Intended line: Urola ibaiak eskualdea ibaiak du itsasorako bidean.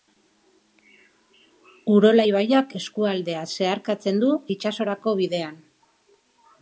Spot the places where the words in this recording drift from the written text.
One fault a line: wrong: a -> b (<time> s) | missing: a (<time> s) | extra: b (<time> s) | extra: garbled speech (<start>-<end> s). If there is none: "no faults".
wrong: ibaiak -> zeharkatzen (3.5 s)